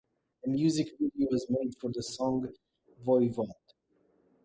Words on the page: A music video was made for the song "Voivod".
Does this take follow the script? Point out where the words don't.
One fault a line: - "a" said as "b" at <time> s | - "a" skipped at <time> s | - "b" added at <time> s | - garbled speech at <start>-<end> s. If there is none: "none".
none